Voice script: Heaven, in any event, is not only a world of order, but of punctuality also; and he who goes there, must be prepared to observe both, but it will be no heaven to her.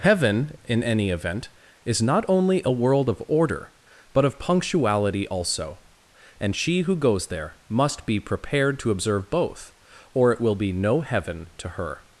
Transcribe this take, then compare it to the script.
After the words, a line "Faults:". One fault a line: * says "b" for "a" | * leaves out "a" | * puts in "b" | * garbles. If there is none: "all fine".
Heaven, in any event, is not only a world of order, but of punctuality also; and she who goes there, must be prepared to observe both, or it will be no heaven to her.
Faults:
* says "she" for "he"
* says "or" for "but"